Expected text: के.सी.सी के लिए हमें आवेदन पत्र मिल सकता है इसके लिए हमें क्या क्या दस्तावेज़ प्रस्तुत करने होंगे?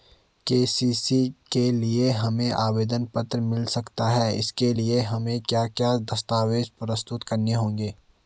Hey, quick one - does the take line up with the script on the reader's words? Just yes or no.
yes